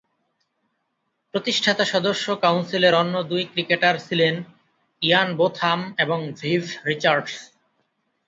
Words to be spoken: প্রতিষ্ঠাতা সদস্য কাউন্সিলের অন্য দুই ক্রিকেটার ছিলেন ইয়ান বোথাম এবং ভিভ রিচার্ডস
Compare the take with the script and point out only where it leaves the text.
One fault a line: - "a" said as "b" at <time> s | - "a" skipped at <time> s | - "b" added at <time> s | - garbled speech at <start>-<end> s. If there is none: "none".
none